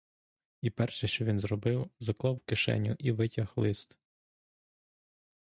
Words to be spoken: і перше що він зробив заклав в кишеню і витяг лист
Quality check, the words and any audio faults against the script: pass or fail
pass